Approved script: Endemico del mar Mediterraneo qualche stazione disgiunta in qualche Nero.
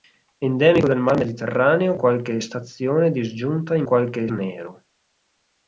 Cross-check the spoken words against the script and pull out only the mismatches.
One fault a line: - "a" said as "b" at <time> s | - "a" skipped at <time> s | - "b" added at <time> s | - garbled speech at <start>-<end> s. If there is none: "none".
none